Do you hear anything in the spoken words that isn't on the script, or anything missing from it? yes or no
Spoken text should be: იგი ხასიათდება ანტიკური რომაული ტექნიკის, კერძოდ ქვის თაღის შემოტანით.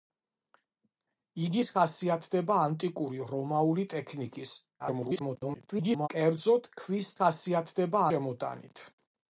yes